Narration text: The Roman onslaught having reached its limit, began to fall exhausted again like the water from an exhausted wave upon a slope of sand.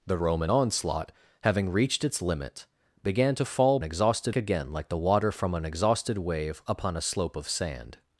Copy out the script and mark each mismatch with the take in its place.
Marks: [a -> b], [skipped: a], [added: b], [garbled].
The Roman onslaught having reached its limit, began to fall exhausted again like the water from an exhausted wave upon a slope of sand.